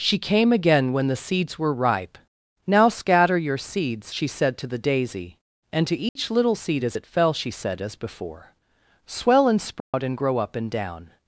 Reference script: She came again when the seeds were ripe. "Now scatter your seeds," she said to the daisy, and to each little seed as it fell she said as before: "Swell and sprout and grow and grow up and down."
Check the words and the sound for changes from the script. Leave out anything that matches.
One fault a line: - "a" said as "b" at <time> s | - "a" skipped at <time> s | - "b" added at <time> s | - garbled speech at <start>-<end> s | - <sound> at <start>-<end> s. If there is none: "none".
- dropout at 6.1-6.2 s
- dropout at 9.8-9.9 s
- "and grow" skipped at 10.4 s